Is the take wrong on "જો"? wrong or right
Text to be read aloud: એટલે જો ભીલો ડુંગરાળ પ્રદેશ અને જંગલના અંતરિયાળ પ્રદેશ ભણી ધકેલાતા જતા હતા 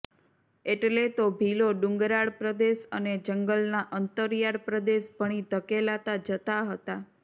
wrong